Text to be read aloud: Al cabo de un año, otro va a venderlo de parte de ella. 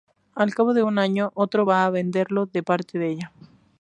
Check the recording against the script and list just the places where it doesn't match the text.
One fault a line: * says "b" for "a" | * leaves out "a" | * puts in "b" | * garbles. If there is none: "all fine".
all fine